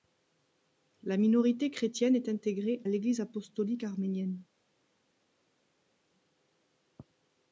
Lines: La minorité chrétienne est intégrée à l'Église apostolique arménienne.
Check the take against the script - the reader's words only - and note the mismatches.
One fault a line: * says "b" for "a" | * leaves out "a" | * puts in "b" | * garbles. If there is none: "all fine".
* leaves out "à"